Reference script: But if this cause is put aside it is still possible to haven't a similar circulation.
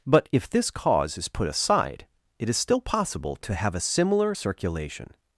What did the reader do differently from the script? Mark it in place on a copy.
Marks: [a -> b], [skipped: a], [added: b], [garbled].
But if this cause is put aside it is still possible to [haven't -> have] a similar circulation.